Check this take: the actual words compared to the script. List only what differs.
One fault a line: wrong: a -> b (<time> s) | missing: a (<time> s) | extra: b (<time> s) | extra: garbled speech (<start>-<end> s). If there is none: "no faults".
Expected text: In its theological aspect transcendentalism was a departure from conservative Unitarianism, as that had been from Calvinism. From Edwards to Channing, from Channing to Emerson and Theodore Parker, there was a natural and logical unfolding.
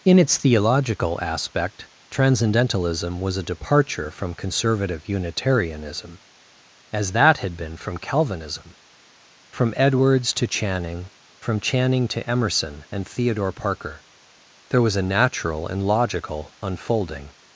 no faults